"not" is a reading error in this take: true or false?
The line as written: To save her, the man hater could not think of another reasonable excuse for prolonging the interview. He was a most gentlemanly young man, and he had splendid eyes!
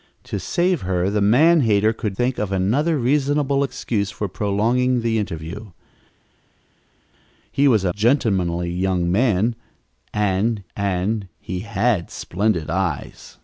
true